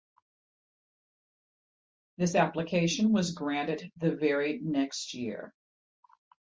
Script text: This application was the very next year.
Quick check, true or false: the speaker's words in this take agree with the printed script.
false